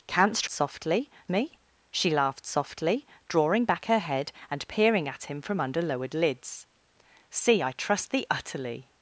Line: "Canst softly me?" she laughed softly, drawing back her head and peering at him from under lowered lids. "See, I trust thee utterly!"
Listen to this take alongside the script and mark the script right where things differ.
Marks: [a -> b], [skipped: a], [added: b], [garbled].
"Canst softly me?" she laughed softly, drawing back her head and peering at him from under lowered lids. "See, I trust thee utterly!"